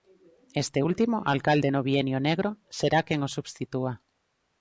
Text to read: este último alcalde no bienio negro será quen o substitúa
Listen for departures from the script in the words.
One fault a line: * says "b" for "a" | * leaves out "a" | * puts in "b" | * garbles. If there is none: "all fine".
all fine